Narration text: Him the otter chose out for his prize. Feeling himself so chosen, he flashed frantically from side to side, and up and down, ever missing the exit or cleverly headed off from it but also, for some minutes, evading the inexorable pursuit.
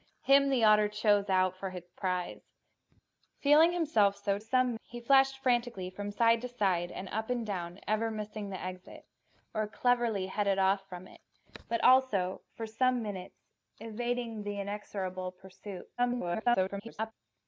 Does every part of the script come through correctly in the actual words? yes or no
no